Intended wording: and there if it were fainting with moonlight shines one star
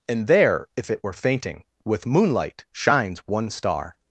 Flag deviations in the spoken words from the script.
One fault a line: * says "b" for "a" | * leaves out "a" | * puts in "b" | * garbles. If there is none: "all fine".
all fine